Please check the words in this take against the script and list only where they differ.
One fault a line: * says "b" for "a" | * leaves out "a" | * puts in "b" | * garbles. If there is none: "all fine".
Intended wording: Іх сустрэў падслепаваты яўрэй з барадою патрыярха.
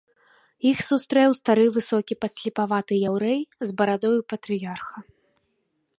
* puts in "стары высокі"